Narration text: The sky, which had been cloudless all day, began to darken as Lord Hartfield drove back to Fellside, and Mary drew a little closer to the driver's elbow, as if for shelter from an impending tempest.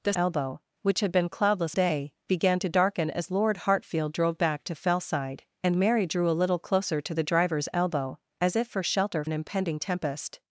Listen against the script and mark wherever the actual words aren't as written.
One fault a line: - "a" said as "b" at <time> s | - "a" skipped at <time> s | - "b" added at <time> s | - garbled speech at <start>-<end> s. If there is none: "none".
- "sky" said as "elbow" at 0.1 s
- "all" skipped at 1.8 s
- "from" skipped at 9.2 s